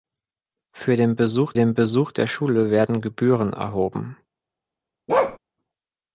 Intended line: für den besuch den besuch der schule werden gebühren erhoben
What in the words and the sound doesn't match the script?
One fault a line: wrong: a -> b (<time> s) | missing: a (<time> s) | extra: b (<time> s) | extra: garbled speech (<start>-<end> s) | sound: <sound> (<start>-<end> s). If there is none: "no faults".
sound: bark (5.1-5.4 s)